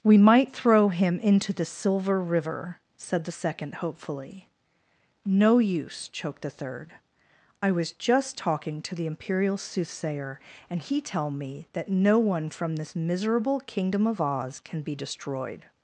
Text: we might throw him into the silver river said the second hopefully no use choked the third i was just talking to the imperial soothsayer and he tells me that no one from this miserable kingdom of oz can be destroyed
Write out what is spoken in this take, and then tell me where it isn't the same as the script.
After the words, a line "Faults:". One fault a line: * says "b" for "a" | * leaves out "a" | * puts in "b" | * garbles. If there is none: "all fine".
we might throw him into the silver river said the second hopefully no use choked the third i was just talking to the imperial soothsayer and he tell me that no one from this miserable kingdom of oz can be destroyed
Faults:
* says "tell" for "tells"